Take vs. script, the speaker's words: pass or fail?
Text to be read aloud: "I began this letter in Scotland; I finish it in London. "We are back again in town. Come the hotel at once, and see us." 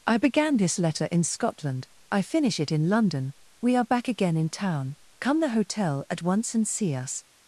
pass